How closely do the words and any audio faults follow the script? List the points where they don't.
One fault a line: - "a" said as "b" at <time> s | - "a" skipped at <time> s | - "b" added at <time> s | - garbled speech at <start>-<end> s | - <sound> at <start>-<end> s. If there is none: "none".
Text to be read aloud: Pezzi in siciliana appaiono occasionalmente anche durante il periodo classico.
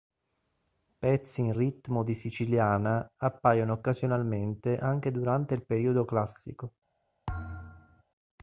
- "ritmo di" added at 1.5 s
- thud at 7.3-8.0 s